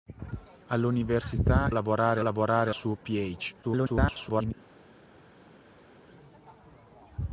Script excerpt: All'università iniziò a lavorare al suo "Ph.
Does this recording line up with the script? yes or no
no